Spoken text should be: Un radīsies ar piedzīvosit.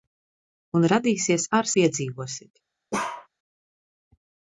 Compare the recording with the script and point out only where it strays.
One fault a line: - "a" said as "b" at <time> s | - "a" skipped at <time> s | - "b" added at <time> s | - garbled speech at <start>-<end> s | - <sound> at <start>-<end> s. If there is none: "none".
- bark at 2.9-3.3 s